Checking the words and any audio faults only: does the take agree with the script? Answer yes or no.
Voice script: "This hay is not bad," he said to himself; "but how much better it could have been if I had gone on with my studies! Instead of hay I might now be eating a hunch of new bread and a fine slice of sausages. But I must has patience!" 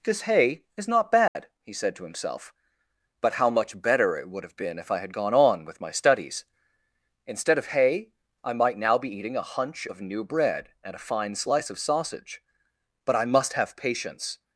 no